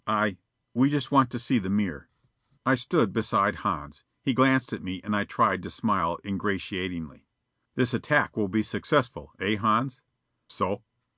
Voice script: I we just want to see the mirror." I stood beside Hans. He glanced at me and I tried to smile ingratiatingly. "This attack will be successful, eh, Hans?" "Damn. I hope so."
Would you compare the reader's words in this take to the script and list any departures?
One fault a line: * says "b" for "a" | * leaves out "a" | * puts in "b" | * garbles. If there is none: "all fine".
* leaves out "Damn I hope"